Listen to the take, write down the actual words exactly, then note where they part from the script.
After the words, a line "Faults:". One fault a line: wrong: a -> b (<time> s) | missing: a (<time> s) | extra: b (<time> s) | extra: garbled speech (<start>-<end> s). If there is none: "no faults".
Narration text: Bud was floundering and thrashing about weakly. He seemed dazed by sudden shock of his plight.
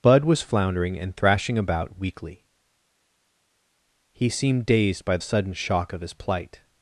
Bud was floundering and thrashing about weakly. He seemed dazed by sudden shock of his plight.
Faults:
no faults